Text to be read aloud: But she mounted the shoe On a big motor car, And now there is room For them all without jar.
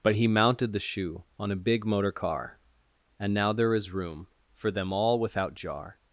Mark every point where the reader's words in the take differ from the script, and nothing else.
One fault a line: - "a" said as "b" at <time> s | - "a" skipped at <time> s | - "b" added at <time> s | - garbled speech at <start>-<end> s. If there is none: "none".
- "she" said as "he" at 0.1 s